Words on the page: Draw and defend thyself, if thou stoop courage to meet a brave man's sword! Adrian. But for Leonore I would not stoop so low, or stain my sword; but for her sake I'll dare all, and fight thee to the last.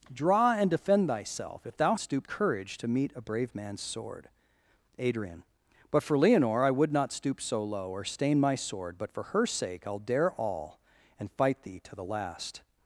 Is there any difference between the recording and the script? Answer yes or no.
no